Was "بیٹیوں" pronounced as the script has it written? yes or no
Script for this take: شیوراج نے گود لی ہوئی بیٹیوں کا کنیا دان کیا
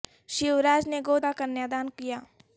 no